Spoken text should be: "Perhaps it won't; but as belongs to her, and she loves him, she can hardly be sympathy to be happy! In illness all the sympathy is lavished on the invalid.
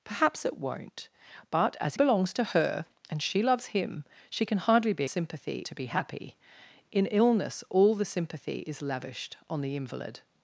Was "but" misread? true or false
false